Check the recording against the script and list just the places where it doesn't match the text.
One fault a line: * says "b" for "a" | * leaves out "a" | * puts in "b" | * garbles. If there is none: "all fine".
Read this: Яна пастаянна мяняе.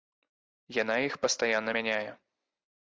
* puts in "іх"